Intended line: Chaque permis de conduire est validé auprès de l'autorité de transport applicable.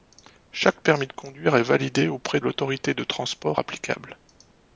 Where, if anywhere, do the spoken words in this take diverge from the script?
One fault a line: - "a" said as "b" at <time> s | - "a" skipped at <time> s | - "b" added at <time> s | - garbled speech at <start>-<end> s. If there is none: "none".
- "de" skipped at 2.4 s